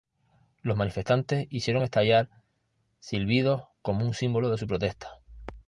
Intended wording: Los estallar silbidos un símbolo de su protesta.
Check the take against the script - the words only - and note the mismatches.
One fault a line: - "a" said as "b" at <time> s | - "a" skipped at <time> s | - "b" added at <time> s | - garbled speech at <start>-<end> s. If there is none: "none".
- "manifestantes hicieron" added at 0.8 s
- "como" added at 3.8 s